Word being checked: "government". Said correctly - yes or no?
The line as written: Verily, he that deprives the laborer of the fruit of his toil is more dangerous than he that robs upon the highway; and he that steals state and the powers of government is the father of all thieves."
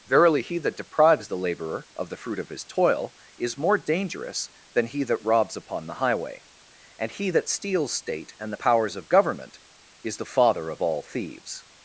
yes